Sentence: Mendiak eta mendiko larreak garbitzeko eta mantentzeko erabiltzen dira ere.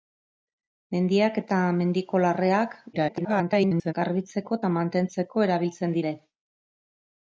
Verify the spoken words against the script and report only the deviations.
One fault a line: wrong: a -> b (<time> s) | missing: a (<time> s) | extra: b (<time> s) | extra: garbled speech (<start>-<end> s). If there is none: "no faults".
extra: garbled speech (2.9-3.9 s)
missing: dira (6.0 s)